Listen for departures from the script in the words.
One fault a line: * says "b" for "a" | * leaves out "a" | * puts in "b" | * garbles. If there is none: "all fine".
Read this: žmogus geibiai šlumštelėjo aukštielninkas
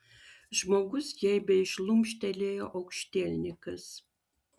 all fine